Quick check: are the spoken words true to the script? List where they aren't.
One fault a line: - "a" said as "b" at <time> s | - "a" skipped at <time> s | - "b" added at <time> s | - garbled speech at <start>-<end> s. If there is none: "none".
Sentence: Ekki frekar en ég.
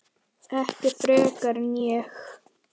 none